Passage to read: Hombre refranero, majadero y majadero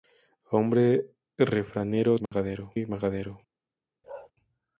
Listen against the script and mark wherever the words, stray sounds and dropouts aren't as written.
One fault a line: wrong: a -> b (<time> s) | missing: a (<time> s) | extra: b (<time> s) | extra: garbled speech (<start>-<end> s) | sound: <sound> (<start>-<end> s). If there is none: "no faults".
sound: dropout (2.3-2.3 s)
sound: bark (4.0-4.3 s)